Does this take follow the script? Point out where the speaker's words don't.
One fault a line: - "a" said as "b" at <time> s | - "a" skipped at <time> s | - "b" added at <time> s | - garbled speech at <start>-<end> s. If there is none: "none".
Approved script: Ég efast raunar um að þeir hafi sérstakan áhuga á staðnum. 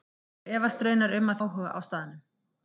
- "þeir hafi sérstakan" skipped at 1.4 s